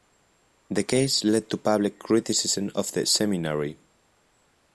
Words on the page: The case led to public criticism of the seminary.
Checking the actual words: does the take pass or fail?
pass